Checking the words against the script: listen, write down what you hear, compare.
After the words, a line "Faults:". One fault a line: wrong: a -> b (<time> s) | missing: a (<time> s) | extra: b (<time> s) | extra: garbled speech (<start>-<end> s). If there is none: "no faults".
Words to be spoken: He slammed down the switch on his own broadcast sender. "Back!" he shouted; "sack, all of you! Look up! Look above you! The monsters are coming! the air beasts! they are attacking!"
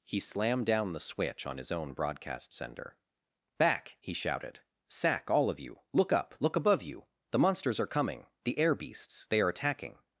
He slammed down the switch on his own broadcast sender. "Back!" he shouted; "sack, all of you! Look up! Look above you! The monsters are coming! the air beasts! they are attacking!"
Faults:
no faults